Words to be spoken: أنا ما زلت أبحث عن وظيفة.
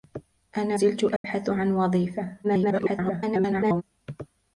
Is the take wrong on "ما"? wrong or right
wrong